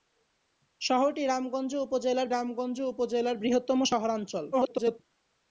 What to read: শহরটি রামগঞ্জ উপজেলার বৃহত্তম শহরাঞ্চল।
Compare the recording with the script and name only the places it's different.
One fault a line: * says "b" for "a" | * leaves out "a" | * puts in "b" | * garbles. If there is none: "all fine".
* puts in "রামগঞ্জ উপজেলার"
* garbles